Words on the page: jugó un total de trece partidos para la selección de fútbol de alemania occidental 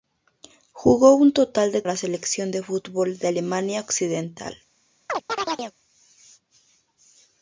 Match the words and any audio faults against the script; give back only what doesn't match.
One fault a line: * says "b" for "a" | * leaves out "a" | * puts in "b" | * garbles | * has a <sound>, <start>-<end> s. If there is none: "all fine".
* leaves out "trece partidos para"
* has a chirp, 5.1-5.8 s